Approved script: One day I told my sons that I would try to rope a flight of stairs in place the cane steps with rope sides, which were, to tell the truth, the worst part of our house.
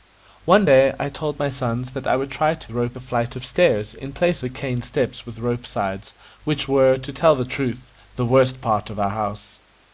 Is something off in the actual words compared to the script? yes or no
no